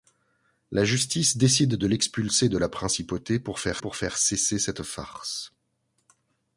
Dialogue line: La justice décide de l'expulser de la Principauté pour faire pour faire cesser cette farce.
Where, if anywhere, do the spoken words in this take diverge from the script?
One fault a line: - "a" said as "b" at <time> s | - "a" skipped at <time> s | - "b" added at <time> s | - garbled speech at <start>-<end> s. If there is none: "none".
none